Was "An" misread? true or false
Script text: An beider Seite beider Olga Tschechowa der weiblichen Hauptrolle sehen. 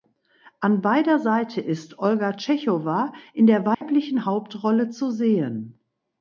false